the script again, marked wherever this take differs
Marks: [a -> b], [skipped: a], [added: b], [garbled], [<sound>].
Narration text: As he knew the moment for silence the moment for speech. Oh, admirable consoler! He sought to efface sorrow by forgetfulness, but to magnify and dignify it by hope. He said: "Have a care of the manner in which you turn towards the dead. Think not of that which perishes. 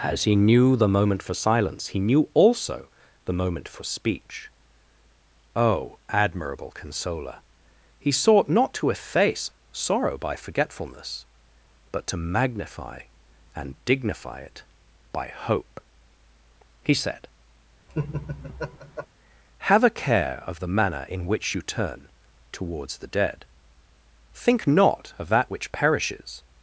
As he knew the moment for silence [added: he knew also] the moment for speech. Oh, admirable consoler! He sought [added: not] to efface sorrow by forgetfulness, but to magnify and dignify it by hope. He said: [laugh] "Have a care of the manner in which you turn towards the dead. Think not of that which perishes.